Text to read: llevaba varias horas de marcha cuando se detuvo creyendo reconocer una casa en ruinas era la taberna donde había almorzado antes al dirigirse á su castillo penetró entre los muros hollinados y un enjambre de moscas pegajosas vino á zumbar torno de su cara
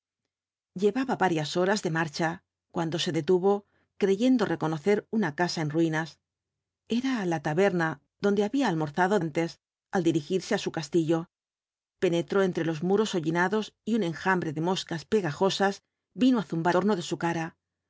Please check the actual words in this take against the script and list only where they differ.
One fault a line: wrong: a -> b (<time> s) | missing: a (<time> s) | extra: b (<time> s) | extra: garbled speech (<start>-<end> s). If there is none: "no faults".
no faults